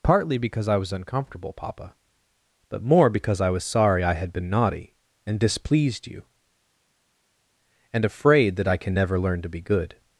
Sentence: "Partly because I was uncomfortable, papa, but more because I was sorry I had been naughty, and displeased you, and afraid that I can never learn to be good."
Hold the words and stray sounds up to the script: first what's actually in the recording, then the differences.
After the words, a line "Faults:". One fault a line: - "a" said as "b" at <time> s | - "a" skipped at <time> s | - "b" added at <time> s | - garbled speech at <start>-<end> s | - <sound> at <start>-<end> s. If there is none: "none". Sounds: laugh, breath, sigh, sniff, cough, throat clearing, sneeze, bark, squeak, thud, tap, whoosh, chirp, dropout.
"Partly because I was uncomfortable, papa, but more because I was sorry I had been naughty, and displeased you, and afraid that I can never learn to be good."
Faults:
none